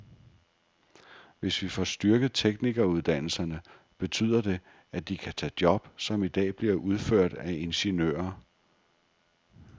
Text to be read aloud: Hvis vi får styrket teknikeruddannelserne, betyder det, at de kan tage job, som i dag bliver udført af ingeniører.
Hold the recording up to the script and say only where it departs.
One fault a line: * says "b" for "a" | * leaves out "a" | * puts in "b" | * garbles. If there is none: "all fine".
all fine